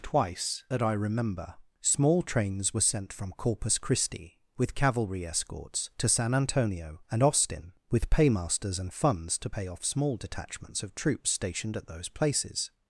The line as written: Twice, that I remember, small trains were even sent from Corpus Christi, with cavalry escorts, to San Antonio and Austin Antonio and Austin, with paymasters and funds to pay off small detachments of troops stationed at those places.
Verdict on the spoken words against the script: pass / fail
fail